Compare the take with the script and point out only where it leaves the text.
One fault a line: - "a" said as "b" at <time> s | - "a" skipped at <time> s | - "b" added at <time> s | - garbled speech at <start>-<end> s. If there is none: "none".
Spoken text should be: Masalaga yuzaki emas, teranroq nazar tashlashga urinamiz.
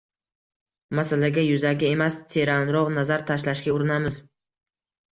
none